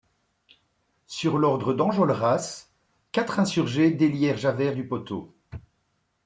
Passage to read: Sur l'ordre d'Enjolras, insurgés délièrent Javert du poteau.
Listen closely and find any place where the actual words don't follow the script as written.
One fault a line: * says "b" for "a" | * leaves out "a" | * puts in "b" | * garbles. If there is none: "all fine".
* puts in "quatre"